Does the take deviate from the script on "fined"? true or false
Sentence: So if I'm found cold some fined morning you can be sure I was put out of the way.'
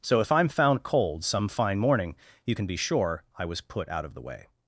true